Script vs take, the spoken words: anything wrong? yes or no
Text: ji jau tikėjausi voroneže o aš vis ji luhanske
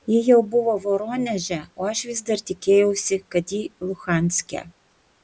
yes